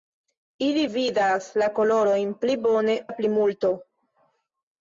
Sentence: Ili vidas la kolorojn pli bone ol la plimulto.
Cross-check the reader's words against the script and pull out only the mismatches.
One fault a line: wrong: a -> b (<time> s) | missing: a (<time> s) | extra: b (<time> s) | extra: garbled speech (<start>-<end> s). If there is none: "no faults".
missing: ol (3.0 s)